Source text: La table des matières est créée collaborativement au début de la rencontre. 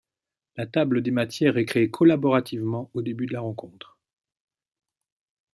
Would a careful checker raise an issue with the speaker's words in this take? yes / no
no